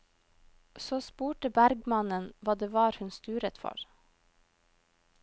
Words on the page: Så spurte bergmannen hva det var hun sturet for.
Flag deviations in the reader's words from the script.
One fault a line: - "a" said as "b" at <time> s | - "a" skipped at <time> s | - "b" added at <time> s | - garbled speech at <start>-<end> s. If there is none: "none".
none